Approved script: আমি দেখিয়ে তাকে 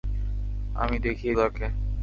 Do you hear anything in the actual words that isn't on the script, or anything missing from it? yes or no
no